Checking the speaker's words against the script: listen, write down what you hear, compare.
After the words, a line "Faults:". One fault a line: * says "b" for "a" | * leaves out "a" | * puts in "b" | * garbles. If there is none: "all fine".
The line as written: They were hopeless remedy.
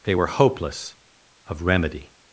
They were hopeless of remedy.
Faults:
* puts in "of"